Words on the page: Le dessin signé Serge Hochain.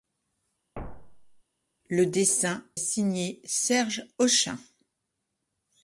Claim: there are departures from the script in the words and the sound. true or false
true